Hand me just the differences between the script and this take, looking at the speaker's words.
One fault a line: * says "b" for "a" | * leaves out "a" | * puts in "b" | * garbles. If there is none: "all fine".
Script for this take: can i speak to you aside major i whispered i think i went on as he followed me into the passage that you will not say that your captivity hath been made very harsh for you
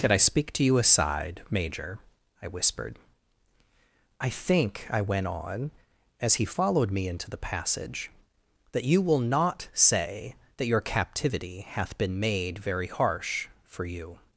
all fine